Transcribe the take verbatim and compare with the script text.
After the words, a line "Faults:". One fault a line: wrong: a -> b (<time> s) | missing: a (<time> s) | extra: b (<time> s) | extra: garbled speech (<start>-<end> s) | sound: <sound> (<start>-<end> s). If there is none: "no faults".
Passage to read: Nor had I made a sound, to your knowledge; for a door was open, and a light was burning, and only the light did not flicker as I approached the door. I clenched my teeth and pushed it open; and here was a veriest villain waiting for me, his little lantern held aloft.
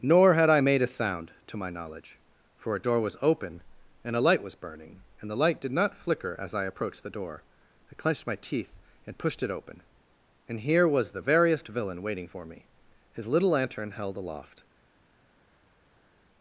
Nor had I made a sound, to my knowledge; for a door was open, and a light was burning, and the light did not flicker as I approached the door. I clenched my teeth and pushed it open; and here was the veriest villain waiting for me, his little lantern held aloft.
Faults:
wrong: your -> my (1.6 s)
missing: only (5.3 s)
wrong: a -> the (11.1 s)